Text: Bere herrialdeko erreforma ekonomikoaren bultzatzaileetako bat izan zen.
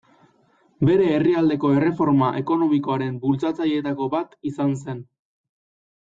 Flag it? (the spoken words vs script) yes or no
no